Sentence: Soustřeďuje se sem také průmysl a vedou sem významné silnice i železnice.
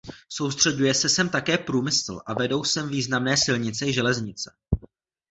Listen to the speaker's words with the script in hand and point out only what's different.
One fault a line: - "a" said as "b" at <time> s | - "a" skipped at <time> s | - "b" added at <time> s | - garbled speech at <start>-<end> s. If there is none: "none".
none